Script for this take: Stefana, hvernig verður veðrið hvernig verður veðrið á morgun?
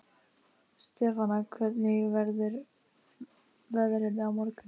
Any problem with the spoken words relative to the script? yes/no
yes